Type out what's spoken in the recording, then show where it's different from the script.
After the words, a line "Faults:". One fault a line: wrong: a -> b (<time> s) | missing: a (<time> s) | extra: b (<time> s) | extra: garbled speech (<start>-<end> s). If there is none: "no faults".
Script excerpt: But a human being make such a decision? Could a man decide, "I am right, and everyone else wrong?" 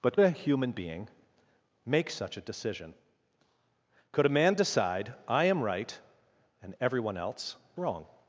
But a human being make such a decision? Could a man decide, "I am right, and everyone else wrong?"
Faults:
no faults